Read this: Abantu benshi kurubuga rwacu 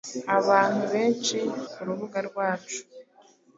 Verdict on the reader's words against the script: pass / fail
pass